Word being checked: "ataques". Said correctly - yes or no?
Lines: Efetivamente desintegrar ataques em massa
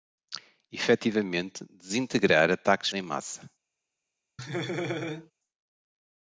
yes